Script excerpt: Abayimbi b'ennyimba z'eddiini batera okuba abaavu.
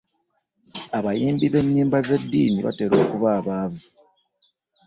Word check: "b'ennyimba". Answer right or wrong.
right